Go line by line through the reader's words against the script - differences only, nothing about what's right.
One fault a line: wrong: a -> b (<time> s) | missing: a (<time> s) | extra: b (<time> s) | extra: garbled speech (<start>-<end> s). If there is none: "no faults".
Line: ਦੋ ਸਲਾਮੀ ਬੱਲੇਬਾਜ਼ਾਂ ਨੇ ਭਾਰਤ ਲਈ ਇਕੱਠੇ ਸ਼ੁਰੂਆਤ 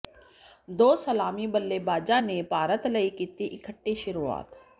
extra: ਕੀਤੀ (3.1 s)